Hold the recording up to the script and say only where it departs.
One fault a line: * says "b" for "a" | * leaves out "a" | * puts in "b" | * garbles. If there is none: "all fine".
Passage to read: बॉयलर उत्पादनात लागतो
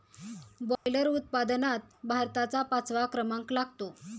* puts in "भारताचा पाचवा क्रमांक"